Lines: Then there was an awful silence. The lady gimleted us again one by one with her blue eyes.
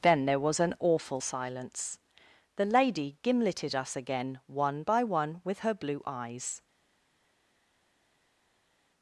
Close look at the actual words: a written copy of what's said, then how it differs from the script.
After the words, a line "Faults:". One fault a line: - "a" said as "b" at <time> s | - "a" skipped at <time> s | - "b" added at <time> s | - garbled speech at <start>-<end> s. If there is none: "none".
Then there was an awful silence. The lady gimleted us again one by one with her blue eyes.
Faults:
none